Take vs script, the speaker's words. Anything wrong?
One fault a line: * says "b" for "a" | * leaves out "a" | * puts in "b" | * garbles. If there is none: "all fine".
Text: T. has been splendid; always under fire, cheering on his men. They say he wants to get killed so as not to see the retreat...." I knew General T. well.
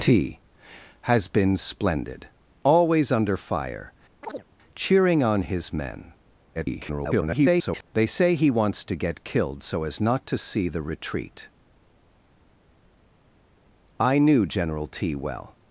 * garbles